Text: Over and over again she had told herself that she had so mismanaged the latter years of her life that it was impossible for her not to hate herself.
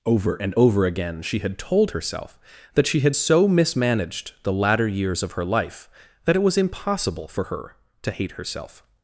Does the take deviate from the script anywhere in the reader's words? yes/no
yes